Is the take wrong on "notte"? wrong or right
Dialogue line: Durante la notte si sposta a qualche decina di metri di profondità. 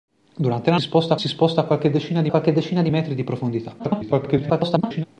wrong